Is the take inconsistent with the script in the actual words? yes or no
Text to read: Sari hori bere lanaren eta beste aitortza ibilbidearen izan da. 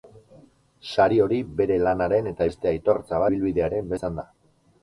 no